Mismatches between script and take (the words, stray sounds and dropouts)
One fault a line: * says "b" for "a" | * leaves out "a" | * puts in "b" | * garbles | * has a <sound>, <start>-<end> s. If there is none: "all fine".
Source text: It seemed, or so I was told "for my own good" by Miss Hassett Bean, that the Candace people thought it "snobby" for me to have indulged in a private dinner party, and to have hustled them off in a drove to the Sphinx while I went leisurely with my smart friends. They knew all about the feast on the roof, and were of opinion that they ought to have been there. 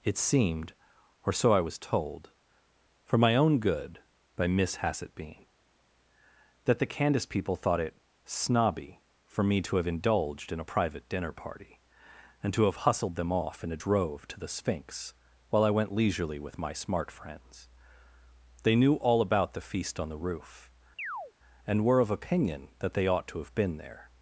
* has a chirp, 21.0-21.3 s